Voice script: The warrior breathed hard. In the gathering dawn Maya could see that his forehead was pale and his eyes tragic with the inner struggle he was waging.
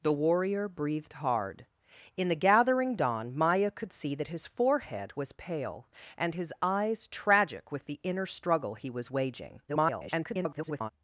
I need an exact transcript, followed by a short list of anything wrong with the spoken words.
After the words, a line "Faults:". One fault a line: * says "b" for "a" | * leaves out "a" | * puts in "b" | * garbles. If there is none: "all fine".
The warrior breathed hard. In the gathering dawn Maya could see that his forehead was pale and his eyes tragic with the inner struggle he was waging. [garbled]
Faults:
* garbles